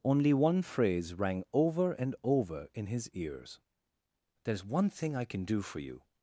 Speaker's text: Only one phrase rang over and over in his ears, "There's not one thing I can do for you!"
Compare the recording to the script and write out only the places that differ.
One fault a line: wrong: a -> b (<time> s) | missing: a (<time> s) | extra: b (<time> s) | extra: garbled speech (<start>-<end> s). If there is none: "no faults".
missing: not (4.6 s)